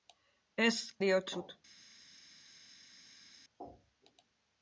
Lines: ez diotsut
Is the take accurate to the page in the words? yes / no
yes